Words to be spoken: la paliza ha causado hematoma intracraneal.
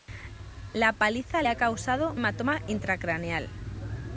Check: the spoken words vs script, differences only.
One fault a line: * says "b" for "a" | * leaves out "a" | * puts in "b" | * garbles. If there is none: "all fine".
all fine